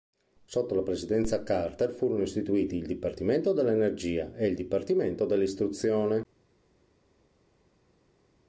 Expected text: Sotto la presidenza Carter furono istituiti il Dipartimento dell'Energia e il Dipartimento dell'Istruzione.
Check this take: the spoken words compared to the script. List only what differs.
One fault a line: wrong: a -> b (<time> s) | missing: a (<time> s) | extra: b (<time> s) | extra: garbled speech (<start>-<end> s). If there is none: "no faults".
no faults